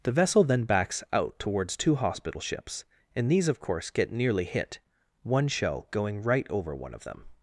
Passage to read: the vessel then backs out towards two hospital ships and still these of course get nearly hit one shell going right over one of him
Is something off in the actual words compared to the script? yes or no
yes